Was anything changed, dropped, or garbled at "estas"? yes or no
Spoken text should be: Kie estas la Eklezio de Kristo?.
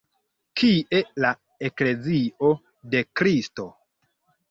yes